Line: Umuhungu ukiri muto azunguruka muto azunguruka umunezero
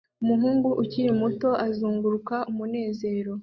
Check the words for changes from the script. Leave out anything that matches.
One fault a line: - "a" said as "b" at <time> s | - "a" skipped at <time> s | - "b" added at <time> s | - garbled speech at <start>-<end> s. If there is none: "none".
- "muto azunguruka" skipped at 2.4 s